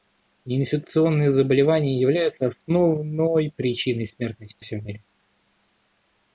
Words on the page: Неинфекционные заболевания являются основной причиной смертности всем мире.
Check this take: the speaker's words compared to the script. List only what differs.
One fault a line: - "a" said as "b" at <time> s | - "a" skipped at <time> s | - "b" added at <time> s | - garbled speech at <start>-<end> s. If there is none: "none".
none